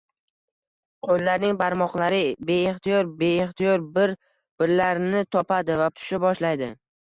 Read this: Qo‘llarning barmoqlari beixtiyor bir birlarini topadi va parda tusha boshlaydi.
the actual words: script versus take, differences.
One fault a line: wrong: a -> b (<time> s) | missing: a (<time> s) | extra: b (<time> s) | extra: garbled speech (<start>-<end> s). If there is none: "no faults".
extra: beixtiyor (3.2 s)
missing: parda (5.9 s)